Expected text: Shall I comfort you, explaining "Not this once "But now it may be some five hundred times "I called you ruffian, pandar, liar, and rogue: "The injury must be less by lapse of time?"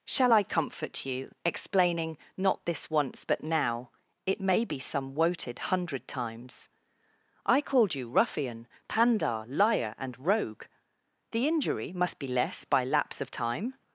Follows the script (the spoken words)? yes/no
no